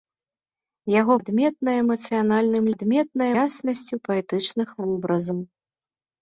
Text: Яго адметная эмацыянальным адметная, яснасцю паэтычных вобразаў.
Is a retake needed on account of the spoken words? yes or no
no